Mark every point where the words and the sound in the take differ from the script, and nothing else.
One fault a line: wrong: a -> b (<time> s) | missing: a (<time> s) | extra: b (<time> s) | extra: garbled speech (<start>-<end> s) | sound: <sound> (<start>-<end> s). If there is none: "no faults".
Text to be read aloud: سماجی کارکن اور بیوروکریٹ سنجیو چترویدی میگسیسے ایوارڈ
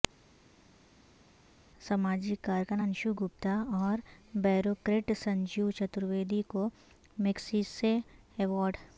extra: انشو گپتا (2.8 s)
extra: کو (6.5 s)